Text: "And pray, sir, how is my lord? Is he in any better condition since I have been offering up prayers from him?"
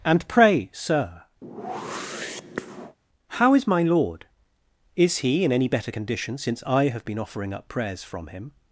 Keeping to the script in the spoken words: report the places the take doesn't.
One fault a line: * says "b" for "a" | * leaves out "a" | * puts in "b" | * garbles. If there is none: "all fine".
all fine